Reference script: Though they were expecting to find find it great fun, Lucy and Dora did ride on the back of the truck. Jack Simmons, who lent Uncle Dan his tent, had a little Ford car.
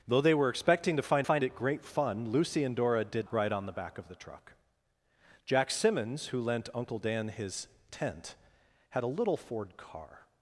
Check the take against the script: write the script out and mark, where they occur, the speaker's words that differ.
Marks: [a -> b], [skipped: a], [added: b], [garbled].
Though they were expecting to find find it great fun, Lucy and Dora did ride on the back of the truck. Jack Simmons, who lent Uncle Dan his tent, had a little Ford car.